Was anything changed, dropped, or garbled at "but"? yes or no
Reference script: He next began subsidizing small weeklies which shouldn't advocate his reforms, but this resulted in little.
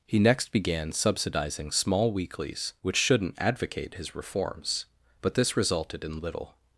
no